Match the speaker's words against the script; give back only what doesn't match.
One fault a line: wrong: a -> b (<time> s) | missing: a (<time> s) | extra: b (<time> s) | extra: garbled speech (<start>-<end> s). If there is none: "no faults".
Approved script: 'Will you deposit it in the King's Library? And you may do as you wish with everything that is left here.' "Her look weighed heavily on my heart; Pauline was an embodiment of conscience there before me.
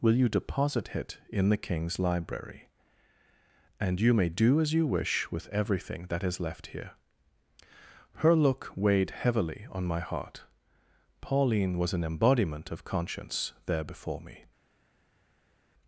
no faults